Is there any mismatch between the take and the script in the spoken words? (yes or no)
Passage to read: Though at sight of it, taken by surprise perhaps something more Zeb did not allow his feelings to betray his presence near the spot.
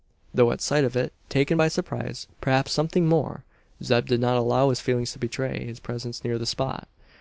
no